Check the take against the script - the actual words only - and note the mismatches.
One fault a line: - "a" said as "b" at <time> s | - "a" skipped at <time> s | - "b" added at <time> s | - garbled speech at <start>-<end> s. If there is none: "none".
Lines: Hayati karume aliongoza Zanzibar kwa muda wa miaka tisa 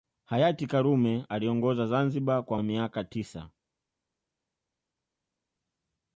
- "muda" skipped at 2.6 s